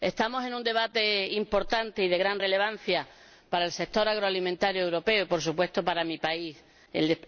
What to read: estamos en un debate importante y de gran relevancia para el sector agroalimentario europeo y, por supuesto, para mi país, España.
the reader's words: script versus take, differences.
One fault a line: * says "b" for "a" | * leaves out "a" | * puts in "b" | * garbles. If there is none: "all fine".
all fine